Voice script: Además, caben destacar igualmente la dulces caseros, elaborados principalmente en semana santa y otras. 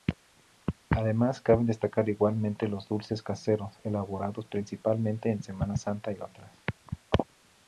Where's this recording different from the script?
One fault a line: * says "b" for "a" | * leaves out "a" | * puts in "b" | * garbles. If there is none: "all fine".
* says "los" for "la"